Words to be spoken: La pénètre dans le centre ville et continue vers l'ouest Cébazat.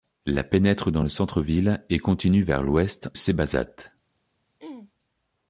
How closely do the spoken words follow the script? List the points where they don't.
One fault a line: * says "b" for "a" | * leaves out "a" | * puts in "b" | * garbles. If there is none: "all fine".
all fine